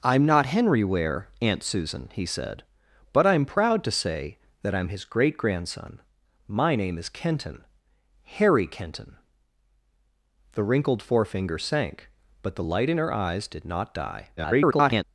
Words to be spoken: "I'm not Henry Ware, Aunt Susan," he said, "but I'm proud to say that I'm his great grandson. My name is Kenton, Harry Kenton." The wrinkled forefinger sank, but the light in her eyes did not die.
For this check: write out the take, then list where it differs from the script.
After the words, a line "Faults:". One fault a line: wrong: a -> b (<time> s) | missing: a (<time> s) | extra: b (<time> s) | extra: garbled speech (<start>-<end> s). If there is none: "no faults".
"I'm not Henry Ware, Aunt Susan," he said, "but I'm proud to say that I'm his great grandson. My name is Kenton, Harry Kenton." The wrinkled forefinger sank, but the light in her eyes did not die. [garbled]
Faults:
extra: garbled speech (14.4-15.0 s)